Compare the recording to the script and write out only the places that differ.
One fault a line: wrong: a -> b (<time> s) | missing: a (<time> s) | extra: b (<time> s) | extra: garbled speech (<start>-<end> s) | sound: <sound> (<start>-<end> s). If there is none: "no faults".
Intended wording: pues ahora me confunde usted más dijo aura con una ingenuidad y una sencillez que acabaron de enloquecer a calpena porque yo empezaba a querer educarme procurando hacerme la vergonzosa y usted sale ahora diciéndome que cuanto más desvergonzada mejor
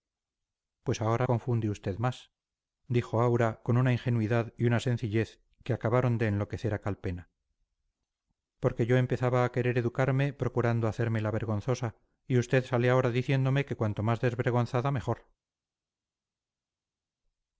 missing: me (1.3 s)